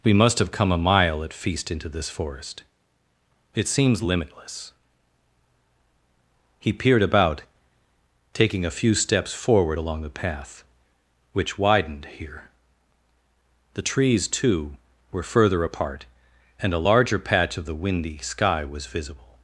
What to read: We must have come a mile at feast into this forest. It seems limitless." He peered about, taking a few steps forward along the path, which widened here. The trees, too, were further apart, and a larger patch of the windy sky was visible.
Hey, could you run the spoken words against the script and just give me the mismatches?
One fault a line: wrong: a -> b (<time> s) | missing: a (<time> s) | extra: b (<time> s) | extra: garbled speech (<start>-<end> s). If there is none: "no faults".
no faults